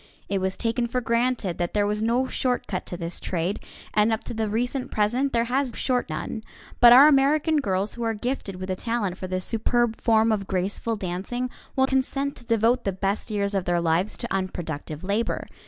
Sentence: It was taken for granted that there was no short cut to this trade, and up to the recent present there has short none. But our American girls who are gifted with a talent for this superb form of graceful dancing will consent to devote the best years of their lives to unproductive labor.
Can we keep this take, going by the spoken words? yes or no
yes